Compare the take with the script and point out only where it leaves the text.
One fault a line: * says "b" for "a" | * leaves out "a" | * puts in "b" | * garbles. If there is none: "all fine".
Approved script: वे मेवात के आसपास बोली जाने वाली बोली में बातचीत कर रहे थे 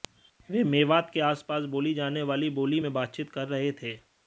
all fine